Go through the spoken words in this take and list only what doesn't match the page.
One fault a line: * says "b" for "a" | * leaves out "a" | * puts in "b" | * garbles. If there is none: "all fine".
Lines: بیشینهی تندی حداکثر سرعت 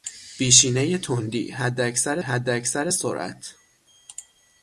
* puts in "حداکثر"